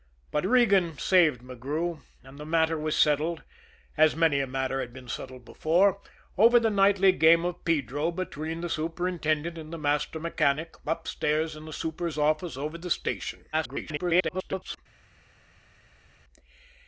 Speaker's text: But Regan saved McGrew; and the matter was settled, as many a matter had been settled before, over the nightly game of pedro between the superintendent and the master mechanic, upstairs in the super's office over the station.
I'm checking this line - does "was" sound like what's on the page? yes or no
yes